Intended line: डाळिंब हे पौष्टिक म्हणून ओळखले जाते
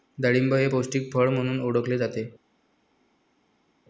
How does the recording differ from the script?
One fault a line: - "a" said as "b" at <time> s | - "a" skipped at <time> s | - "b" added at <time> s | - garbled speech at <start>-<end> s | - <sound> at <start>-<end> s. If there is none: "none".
- "फळ" added at 1.1 s